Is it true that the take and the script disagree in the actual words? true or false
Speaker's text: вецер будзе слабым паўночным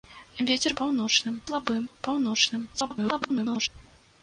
true